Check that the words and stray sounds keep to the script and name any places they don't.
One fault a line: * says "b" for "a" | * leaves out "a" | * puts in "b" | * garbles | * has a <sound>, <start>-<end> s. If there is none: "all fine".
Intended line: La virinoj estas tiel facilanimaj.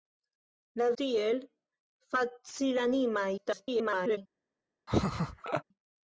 * leaves out "virinoj estas"
* garbles
* has a laugh, 4.9-5.6 s